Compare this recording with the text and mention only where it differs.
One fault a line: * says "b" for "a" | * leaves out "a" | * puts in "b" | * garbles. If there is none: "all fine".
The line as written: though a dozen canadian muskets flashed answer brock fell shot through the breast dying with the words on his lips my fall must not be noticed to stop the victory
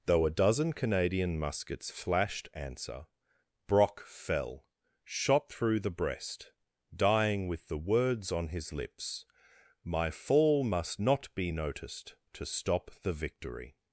all fine